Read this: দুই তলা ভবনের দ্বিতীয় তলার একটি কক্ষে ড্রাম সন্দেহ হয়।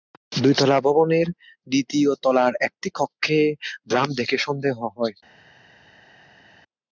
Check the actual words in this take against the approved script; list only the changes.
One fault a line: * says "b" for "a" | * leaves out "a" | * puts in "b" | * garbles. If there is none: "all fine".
* puts in "দেখে"